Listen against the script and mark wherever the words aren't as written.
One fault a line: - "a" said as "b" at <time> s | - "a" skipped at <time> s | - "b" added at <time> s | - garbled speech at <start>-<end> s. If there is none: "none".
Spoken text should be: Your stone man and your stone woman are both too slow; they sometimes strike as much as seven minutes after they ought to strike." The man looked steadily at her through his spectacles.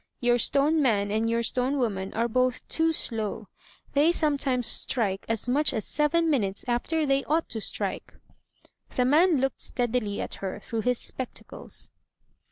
none